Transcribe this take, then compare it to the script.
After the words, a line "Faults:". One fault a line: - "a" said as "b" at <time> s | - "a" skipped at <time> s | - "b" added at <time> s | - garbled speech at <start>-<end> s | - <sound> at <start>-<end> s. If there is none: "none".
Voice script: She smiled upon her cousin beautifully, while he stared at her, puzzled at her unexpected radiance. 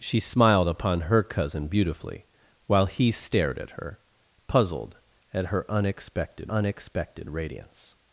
She smiled upon her cousin beautifully, while he stared at her, puzzled at her unexpected unexpected radiance.
Faults:
- "unexpected" added at 6.5 s